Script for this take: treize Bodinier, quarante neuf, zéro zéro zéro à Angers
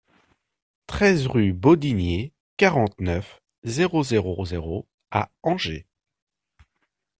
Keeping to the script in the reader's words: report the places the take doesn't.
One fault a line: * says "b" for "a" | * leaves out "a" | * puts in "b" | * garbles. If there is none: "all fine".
* puts in "rue"